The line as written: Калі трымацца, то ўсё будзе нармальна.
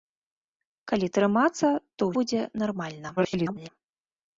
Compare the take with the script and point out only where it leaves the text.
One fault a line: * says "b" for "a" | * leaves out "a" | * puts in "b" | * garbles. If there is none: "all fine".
* leaves out "ўсё"
* garbles